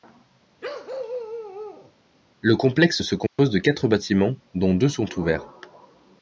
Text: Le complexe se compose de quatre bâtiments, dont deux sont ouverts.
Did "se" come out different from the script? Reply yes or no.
no